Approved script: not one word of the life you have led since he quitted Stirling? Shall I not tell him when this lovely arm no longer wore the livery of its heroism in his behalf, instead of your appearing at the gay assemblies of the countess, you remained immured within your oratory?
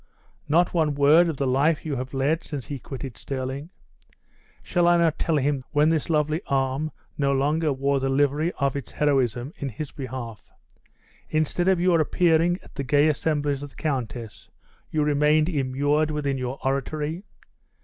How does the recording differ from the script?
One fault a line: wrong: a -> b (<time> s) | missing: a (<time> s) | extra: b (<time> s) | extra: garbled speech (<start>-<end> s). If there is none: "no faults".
no faults